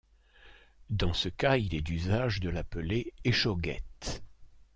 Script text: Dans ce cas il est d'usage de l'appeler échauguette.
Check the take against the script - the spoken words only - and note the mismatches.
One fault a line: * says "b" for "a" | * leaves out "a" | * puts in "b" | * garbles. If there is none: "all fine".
all fine